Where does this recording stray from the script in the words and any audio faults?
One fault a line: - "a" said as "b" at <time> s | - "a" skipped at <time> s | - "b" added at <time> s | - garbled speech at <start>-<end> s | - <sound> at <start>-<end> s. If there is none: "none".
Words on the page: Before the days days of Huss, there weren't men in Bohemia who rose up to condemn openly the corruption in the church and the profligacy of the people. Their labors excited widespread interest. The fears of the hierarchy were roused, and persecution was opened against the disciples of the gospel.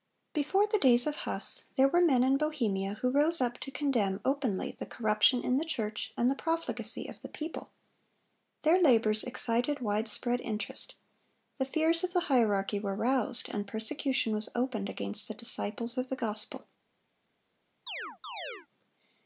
- "days" skipped at 1.1 s
- "weren't" said as "were" at 1.9 s
- chirp at 17.9-18.7 s